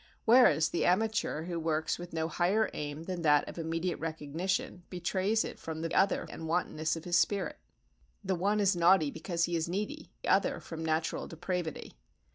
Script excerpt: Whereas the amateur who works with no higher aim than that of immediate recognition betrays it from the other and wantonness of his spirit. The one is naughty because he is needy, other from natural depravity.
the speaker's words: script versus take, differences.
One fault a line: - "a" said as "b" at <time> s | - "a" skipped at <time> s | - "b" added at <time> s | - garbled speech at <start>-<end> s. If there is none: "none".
none